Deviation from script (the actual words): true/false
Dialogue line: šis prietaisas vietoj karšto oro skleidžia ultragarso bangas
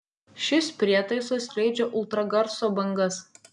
true